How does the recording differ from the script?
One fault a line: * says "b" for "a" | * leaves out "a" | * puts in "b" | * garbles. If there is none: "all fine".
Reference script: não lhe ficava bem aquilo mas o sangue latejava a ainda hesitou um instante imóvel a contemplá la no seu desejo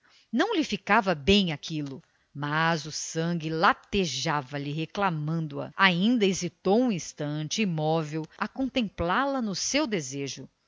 * puts in "lhe reclamando"